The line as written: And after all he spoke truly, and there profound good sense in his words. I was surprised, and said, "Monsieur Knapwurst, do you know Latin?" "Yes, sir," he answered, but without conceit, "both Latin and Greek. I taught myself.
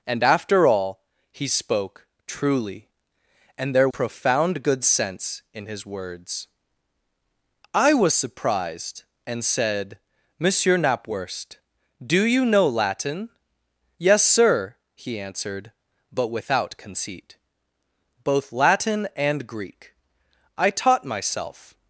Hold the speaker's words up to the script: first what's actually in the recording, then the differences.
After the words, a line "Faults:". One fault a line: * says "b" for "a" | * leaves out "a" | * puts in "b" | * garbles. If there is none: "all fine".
And after all he spoke truly, and there profound good sense in his words. I was surprised, and said, "Monsieur Knapwurst, do you know Latin?" "Yes, sir," he answered, but without conceit, "both Latin and Greek. I taught myself.
Faults:
all fine